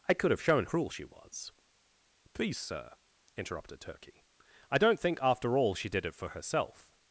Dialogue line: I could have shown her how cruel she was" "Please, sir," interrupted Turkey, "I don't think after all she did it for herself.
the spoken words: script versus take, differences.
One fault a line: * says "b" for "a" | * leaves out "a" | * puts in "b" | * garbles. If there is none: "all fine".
* leaves out "her how"